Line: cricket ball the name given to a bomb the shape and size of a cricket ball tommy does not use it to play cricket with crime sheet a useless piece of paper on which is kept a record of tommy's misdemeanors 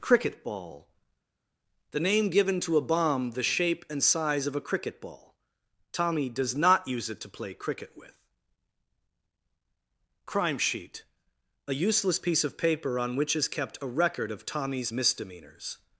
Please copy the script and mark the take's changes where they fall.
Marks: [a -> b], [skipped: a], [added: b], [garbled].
cricket ball the name given to a bomb the shape and size of a cricket ball tommy does not use it to play cricket with crime sheet a useless piece of paper on which is kept a record of tommy's misdemeanors